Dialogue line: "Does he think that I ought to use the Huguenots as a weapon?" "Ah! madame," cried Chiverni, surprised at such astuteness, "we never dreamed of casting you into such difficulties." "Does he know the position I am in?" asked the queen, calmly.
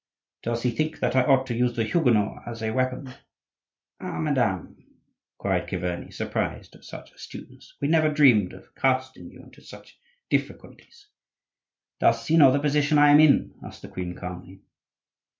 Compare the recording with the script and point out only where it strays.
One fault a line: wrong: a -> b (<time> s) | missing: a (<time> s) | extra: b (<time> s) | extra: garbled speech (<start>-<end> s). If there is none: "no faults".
no faults